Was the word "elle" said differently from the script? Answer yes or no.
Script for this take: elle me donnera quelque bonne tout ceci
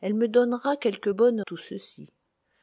no